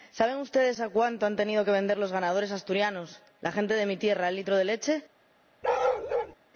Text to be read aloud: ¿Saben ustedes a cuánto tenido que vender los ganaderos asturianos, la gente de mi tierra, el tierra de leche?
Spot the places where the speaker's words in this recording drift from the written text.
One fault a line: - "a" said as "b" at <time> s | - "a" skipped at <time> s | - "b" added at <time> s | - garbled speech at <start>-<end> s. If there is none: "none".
- "han" added at 1.2 s
- "tierra" said as "litro" at 4.3 s